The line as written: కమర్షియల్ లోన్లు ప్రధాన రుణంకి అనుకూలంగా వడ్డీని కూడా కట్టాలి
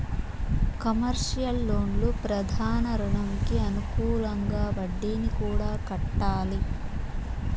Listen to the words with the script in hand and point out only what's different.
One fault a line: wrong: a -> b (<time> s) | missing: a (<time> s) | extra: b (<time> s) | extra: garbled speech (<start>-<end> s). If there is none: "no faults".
no faults